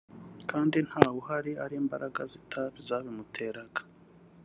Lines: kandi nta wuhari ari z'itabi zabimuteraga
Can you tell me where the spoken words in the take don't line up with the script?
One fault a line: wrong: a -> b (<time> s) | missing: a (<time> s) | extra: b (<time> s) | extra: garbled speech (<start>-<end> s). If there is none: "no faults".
extra: imbaraga (1.8 s)